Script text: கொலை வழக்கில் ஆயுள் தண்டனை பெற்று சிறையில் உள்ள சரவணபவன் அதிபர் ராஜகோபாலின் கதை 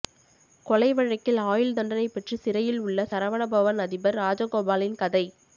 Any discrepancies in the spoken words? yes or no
no